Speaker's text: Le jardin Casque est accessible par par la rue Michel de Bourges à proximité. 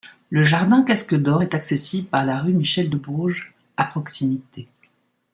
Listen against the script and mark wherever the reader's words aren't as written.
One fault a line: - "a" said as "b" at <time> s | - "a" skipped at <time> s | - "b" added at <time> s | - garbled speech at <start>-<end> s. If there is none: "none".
- "d'Or" added at 1.1 s
- "par" skipped at 2.2 s